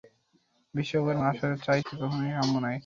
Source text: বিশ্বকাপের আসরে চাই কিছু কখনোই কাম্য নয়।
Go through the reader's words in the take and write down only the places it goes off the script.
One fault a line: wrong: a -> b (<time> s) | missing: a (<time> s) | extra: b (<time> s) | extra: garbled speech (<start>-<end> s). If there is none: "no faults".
no faults